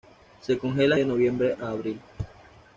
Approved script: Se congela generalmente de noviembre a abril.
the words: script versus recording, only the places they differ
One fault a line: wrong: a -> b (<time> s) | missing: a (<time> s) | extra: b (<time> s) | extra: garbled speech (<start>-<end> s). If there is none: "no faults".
missing: generalmente (1.0 s)